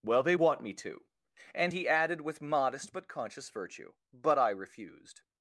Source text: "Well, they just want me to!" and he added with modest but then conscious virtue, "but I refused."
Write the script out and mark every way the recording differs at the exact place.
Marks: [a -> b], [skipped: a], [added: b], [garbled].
"Well, they [skipped: just] want me to!" and he added with modest but [skipped: then] conscious virtue, "but I refused."